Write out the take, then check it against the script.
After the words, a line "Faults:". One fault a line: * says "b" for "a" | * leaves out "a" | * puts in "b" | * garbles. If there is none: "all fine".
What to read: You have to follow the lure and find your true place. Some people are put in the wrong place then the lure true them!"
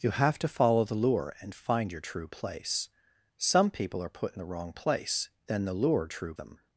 You have to follow the lure and find your true place. Some people are put in the wrong place then the lure true them!"
Faults:
all fine